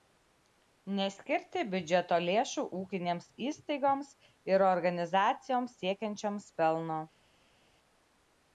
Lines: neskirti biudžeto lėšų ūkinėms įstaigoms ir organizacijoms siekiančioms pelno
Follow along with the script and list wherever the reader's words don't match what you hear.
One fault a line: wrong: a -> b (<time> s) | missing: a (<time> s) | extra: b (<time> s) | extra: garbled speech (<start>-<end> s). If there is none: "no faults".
no faults